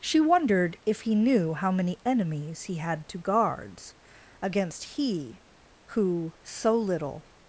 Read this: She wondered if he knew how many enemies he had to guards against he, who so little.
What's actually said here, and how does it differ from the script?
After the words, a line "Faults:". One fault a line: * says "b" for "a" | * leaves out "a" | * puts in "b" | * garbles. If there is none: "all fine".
She wondered if he knew how many enemies he had to guards against he, who so little.
Faults:
all fine